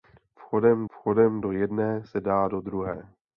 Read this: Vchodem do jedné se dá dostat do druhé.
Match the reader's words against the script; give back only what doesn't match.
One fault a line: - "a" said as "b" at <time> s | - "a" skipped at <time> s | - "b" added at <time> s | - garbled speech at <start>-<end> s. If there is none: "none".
- "vchodem" added at 0.9 s
- "dostat" skipped at 2.5 s